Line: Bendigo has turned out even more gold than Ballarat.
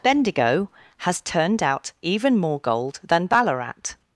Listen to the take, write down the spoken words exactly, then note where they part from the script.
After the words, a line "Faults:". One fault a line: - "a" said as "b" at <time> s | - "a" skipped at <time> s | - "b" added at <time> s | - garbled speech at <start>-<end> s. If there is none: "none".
Bendigo has turned out even more gold than Ballarat.
Faults:
none